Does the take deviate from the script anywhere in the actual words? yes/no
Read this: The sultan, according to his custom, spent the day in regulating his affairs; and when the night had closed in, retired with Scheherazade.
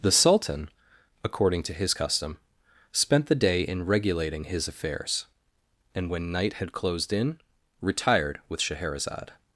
yes